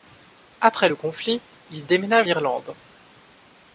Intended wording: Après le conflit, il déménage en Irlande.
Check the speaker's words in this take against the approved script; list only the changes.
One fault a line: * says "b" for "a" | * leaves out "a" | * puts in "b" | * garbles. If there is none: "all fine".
* leaves out "en"